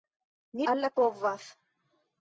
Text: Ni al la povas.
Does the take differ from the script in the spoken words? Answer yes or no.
no